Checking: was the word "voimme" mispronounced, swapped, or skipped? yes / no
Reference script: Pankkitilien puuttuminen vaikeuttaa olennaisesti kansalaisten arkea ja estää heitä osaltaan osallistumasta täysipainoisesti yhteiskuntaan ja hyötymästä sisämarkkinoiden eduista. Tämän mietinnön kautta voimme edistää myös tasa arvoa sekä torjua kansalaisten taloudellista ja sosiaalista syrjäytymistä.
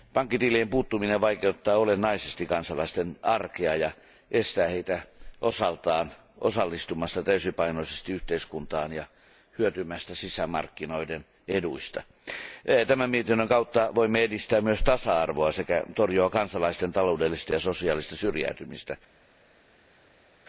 no